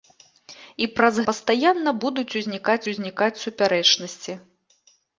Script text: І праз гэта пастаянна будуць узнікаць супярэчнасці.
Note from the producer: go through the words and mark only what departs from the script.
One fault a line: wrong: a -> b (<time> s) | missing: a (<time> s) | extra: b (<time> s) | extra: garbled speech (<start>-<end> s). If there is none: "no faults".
missing: гэта (1.2 s)
extra: узнікаць (2.9 s)